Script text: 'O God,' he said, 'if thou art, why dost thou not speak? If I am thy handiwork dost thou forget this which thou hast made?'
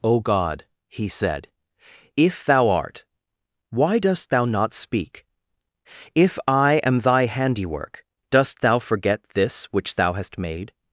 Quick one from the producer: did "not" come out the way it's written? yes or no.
yes